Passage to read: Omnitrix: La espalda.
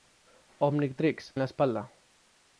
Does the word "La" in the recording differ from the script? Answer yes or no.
no